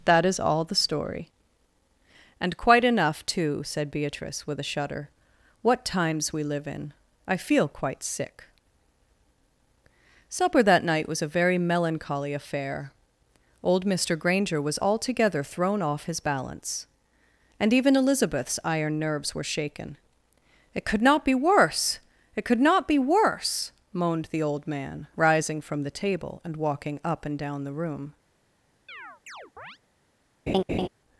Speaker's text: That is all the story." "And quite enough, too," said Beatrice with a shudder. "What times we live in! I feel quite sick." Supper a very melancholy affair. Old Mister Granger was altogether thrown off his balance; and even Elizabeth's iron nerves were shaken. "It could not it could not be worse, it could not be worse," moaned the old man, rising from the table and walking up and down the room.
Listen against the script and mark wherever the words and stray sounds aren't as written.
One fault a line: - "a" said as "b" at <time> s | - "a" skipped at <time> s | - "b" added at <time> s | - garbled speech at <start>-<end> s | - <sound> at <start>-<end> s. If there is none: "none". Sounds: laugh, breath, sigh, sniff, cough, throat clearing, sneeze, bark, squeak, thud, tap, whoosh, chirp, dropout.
- "that night was" added at 10.6 s
- "it could not" skipped at 21.2 s
- chirp at 28.9-29.8 s
- laugh at 30.5-30.9 s